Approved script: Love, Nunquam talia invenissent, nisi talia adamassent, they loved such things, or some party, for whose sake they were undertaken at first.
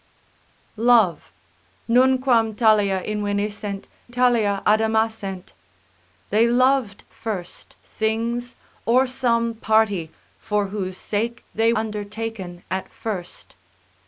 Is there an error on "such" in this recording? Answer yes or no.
yes